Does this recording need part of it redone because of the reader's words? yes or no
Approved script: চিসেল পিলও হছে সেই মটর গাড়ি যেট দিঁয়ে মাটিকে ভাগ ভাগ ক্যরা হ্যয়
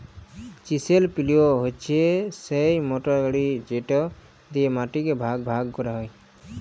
no